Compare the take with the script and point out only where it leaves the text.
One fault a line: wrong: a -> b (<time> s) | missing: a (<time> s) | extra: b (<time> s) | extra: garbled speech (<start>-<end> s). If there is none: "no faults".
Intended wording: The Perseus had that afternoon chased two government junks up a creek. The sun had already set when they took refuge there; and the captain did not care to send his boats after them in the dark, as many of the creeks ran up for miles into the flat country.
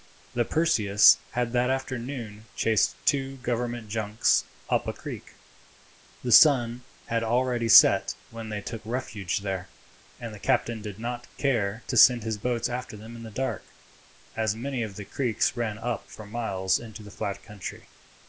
no faults